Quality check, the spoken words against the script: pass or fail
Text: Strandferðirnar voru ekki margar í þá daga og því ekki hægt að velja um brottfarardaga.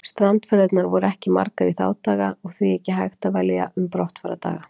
pass